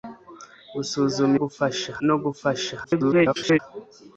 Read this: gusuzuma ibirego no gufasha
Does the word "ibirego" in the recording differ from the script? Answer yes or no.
yes